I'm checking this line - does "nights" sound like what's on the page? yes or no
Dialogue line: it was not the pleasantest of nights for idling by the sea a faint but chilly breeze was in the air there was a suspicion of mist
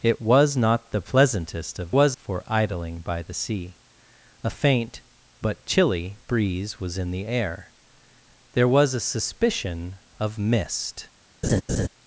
no